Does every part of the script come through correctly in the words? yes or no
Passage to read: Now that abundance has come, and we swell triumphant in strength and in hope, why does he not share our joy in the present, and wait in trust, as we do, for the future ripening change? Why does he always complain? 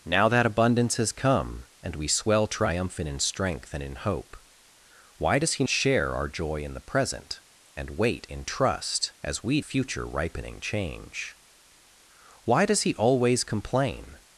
no